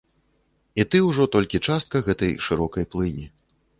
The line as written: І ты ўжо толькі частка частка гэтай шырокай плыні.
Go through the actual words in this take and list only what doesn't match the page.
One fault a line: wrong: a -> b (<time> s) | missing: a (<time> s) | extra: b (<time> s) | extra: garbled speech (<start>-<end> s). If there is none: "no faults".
missing: частка (2.0 s)